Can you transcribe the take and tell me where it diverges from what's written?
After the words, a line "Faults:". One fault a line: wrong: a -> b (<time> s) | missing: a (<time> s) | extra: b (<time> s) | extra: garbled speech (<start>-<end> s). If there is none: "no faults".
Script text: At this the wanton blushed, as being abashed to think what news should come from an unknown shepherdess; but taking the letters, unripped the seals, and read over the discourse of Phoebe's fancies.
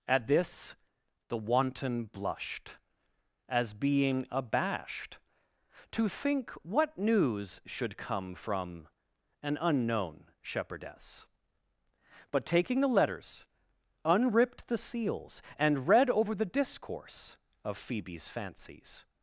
At this the wanton blushed, as being abashed to think what news should come from an unknown shepherdess; but taking the letters, unripped the seals, and read over the discourse of Phoebe's fancies.
Faults:
no faults